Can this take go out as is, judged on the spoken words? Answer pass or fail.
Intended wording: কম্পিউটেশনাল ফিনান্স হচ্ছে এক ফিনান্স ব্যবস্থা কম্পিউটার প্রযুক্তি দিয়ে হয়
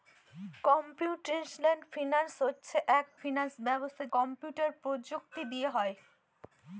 pass